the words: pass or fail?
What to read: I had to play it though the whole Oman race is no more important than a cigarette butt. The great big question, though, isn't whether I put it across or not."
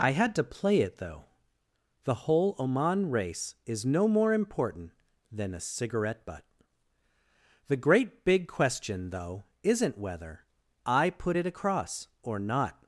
pass